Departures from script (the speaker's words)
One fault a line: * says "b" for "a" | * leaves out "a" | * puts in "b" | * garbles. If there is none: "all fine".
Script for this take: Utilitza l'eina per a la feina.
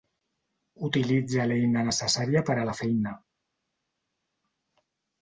* puts in "necessària"